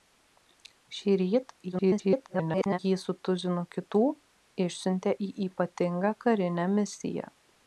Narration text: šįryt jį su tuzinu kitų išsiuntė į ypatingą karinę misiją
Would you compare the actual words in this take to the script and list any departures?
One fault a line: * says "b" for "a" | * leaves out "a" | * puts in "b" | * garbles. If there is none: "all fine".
* garbles